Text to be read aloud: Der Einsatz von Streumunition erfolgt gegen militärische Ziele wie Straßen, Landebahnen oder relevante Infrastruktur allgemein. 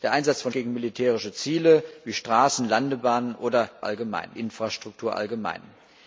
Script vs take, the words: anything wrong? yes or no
yes